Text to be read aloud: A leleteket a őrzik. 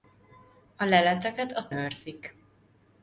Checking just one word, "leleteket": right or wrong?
right